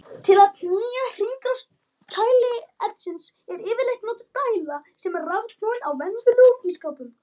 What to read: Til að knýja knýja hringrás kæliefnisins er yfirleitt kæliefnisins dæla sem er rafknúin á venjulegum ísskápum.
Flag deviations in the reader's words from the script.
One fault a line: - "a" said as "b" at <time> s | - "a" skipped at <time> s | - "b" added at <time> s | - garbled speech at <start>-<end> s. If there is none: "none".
- "knýja" skipped at 1.0 s
- "kæliefnisins" said as "notuð" at 4.1 s